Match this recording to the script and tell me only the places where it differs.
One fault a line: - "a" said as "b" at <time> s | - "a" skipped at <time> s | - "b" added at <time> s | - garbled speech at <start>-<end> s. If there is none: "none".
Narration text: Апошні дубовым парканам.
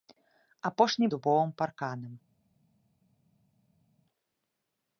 none